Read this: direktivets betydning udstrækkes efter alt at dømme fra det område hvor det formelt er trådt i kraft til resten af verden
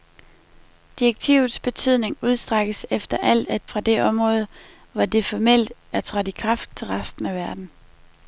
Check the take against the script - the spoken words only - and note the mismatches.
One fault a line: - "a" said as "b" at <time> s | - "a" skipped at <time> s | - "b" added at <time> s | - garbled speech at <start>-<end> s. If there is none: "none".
- "dømme" skipped at 3.7 s